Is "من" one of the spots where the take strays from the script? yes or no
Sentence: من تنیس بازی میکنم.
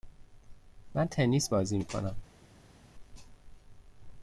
no